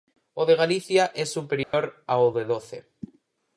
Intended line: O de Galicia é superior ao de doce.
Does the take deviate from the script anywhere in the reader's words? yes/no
no